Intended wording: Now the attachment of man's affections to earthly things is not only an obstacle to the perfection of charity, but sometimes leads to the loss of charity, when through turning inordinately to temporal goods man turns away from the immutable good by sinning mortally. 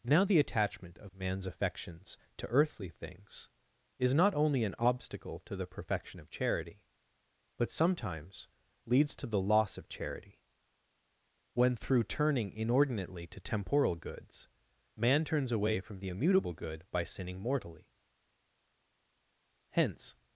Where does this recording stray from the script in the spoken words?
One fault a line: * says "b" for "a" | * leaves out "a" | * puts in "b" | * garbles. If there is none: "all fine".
* puts in "Hence"